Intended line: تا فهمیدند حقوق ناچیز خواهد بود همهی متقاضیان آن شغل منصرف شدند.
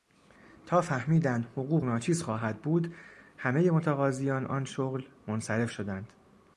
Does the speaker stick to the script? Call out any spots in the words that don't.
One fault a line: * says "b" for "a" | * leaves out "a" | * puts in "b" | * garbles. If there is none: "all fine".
all fine